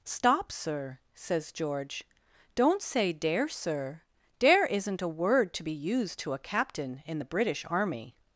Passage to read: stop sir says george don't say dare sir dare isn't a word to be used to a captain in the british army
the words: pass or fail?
pass